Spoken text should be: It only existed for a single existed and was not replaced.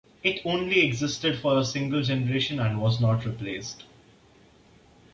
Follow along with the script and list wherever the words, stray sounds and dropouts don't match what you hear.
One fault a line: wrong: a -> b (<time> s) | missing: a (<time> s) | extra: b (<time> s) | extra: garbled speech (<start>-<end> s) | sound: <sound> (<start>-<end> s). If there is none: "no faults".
wrong: existed -> generation (2.0 s)